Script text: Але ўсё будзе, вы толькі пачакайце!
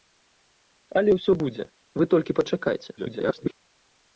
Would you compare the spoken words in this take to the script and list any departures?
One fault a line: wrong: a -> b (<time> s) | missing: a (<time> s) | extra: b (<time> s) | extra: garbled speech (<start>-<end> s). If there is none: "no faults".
extra: garbled speech (3.0-3.5 s)